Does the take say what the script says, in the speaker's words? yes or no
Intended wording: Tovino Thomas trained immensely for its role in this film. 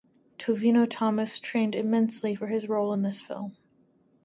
no